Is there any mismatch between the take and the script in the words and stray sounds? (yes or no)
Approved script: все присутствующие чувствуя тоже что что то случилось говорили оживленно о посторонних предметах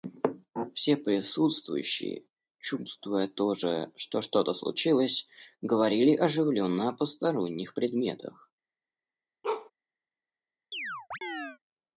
yes